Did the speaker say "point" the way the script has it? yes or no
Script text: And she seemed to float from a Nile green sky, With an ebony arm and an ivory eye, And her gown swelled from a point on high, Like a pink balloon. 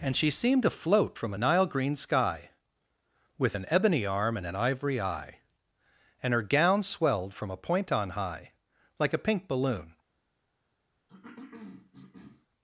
yes